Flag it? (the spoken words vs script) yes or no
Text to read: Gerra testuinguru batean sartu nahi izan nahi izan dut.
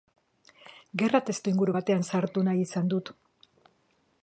yes